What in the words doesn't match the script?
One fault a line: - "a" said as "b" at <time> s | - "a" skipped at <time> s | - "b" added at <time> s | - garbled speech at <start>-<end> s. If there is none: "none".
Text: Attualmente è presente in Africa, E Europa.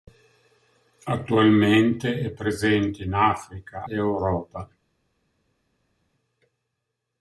none